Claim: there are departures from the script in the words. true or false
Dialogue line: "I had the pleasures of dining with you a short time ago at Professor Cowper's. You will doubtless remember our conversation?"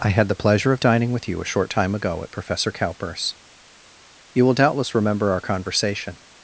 true